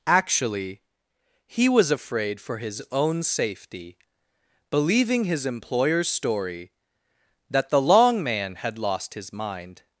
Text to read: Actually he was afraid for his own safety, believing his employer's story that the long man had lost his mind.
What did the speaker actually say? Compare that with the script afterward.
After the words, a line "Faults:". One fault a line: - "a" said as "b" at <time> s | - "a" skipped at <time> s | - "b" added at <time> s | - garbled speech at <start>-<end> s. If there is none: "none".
Actually he was afraid for his own safety, believing his employer's story that the long man had lost his mind.
Faults:
none